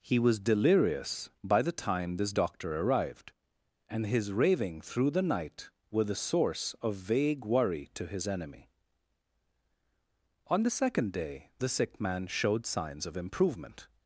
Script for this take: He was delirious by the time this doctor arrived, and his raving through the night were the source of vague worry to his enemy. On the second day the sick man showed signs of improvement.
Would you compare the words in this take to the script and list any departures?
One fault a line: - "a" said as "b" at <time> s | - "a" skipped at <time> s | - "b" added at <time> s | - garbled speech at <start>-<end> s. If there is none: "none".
none